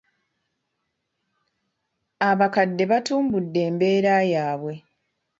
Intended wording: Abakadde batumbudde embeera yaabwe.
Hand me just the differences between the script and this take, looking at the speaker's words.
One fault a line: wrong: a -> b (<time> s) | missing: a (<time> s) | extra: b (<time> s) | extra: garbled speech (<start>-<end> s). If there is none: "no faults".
no faults